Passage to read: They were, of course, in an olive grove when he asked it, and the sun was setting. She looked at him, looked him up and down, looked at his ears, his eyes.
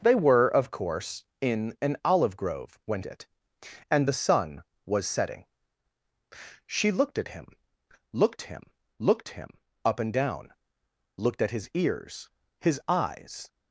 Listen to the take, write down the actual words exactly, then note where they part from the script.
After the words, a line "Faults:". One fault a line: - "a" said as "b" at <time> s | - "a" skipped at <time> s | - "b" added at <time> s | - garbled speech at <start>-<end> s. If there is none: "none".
They were, of course, in an olive grove when it, and the sun was setting. She looked at him, looked him looked him up and down, looked at his ears, his eyes.
Faults:
- "he asked" skipped at 3.0 s
- "looked him" added at 9.0 s